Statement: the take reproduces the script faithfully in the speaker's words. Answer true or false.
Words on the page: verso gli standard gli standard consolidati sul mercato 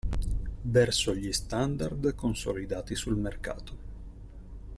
false